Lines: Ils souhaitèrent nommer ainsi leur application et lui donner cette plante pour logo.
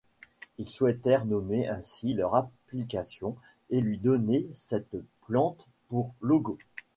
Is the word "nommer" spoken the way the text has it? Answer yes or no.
yes